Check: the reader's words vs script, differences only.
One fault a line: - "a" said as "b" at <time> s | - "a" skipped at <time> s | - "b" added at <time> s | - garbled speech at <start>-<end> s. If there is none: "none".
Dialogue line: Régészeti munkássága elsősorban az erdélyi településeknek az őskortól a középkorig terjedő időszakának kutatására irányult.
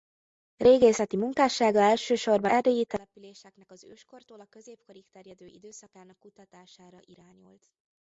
- "az" skipped at 2.5 s